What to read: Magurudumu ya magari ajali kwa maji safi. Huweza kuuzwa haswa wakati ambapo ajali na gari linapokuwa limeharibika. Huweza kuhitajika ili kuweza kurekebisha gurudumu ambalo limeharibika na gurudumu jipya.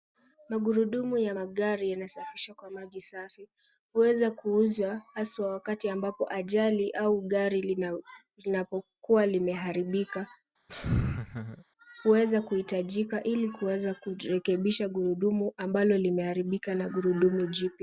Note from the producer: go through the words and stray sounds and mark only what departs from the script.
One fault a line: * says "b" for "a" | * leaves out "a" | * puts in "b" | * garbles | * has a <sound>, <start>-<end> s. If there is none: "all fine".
* says "yanasafishwa" for "ajali"
* says "au" for "na"
* has a laugh, 10.7-11.6 s